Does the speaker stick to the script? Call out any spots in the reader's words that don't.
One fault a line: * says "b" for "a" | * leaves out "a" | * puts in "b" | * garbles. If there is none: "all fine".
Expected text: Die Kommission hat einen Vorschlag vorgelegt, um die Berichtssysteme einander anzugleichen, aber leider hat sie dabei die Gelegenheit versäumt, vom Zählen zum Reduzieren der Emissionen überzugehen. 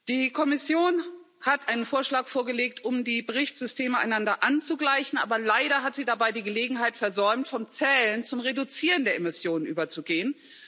all fine